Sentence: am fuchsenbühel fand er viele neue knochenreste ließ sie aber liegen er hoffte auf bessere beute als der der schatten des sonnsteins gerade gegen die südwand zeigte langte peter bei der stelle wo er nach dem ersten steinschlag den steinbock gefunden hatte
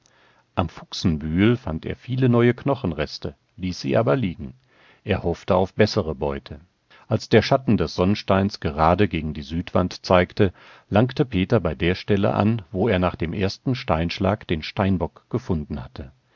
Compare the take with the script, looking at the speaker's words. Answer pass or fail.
fail